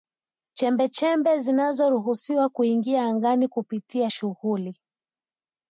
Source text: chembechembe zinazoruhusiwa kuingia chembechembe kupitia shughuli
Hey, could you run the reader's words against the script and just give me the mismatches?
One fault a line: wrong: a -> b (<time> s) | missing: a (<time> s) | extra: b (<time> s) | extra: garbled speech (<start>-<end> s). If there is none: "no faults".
wrong: chembechembe -> angani (3.0 s)